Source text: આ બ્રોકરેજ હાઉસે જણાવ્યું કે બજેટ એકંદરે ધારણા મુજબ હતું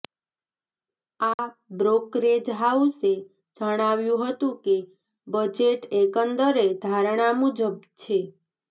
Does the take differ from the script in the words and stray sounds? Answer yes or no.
yes